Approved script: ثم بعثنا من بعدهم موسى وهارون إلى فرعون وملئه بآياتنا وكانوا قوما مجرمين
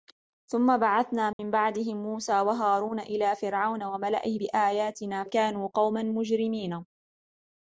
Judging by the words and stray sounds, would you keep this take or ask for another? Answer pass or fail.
fail